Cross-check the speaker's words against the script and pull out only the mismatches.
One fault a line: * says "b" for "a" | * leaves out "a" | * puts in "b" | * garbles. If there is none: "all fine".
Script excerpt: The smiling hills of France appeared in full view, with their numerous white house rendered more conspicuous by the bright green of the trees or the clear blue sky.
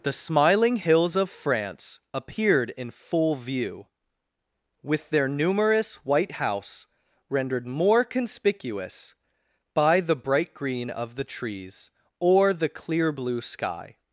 all fine